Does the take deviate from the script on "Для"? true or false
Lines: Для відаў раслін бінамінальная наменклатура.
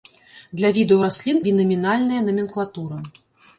false